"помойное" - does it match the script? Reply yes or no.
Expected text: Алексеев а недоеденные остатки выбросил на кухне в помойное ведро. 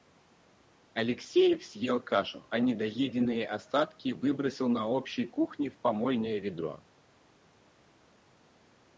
yes